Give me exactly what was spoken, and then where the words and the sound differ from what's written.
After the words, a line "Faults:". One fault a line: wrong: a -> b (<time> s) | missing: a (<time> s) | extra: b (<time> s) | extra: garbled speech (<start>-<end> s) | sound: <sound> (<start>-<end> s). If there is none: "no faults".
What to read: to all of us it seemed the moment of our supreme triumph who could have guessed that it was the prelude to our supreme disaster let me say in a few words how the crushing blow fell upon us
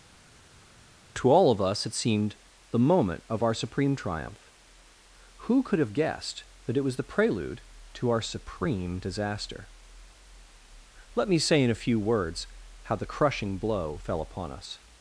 to all of us it seemed the moment of our supreme triumph who could have guessed that it was the prelude to our supreme disaster let me say in a few words how the crushing blow fell upon us
Faults:
no faults